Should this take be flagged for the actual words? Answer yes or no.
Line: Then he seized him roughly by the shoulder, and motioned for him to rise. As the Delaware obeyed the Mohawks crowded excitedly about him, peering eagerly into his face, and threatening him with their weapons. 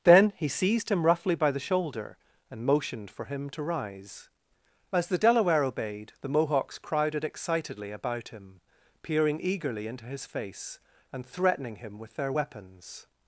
no